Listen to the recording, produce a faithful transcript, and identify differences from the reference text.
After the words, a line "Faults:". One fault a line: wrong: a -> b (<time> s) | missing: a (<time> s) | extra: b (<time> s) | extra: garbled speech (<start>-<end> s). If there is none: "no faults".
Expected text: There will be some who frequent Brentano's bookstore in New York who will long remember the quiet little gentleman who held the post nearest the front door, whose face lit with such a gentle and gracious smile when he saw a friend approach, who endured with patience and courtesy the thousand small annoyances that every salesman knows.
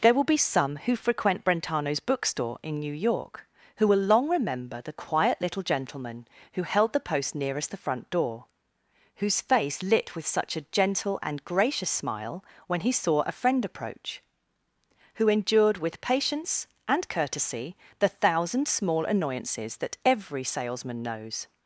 There will be some who frequent Brentano's bookstore in New York who will long remember the quiet little gentleman who held the post nearest the front door, whose face lit with such a gentle and gracious smile when he saw a friend approach, who endured with patience and courtesy the thousand small annoyances that every salesman knows.
Faults:
no faults